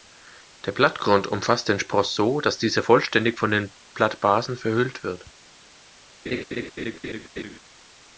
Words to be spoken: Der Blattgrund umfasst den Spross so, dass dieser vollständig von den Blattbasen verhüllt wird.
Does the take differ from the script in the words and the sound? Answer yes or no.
yes